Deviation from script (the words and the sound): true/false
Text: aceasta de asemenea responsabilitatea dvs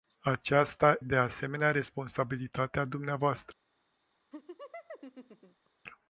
true